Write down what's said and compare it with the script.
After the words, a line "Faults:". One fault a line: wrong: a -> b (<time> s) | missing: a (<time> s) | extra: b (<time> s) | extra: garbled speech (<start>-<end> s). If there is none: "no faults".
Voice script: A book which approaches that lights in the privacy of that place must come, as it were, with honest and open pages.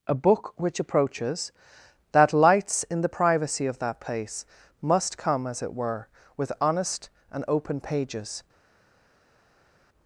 A book which approaches that lights in the privacy of that place must come, as it were, with honest and open pages.
Faults:
no faults